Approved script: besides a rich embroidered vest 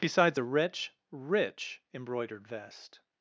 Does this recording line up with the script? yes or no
no